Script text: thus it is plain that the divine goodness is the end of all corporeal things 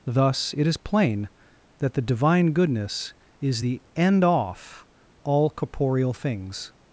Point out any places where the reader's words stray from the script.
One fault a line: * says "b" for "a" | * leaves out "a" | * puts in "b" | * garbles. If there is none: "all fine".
* says "off" for "of"